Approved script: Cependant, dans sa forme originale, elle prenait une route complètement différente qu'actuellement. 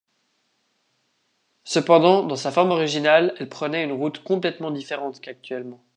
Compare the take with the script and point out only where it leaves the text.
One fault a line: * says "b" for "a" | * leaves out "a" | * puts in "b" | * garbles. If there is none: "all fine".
all fine